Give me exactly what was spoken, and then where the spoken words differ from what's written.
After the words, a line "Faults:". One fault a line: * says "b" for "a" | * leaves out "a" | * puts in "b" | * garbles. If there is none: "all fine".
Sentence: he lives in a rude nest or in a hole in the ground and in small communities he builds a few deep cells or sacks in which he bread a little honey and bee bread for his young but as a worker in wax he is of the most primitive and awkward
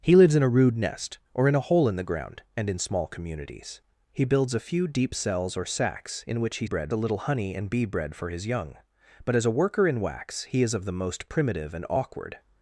he lives in a rude nest or in a hole in the ground and in small communities he builds a few deep cells or sacks in which he bread a little honey and bee bread for his young but as a worker in wax he is of the most primitive and awkward
Faults:
all fine